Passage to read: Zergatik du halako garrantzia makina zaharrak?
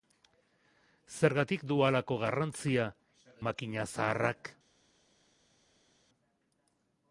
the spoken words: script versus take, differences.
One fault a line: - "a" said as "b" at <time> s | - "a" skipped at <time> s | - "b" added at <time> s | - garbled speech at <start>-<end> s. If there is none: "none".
none